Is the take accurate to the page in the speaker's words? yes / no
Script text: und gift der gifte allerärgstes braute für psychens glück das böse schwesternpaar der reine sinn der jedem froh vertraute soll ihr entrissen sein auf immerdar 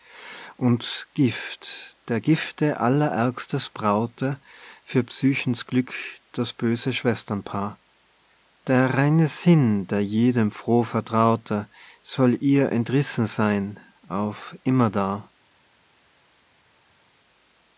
yes